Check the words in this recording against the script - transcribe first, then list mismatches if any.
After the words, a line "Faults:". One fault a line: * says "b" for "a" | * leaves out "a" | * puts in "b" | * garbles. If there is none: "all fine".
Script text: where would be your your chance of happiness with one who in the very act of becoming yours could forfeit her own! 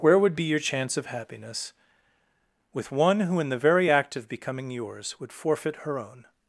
where would be your chance of happiness with one who in the very act of becoming yours would forfeit her own!
Faults:
* leaves out "your"
* says "would" for "could"